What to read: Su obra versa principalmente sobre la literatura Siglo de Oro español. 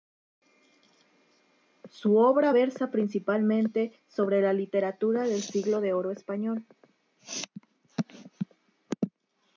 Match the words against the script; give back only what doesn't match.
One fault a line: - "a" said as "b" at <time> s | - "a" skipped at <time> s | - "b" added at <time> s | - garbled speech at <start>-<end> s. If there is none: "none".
- "del" added at 5.2 s